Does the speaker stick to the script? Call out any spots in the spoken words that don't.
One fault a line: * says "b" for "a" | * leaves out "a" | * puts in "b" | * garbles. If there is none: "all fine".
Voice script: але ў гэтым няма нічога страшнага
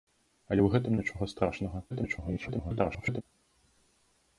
* leaves out "няма"
* garbles